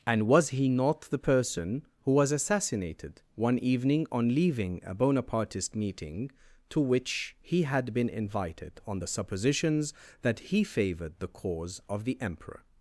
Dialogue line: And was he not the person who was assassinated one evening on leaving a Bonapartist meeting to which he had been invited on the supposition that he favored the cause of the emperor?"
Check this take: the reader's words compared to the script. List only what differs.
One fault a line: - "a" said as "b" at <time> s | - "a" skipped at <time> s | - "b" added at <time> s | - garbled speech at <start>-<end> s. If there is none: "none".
- "supposition" said as "suppositions" at 9.1 s